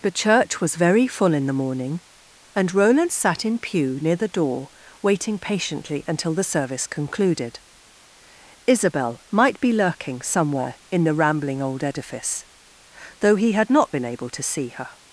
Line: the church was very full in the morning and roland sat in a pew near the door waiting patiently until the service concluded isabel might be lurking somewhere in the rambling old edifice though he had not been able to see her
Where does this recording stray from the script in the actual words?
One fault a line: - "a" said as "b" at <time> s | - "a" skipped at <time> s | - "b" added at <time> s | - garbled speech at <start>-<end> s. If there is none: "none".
- "a" skipped at 3.6 s